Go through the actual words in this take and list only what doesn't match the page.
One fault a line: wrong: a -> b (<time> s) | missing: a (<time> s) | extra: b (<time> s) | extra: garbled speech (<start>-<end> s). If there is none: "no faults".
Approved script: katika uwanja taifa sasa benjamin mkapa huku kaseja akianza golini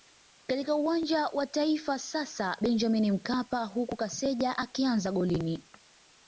extra: wa (1.3 s)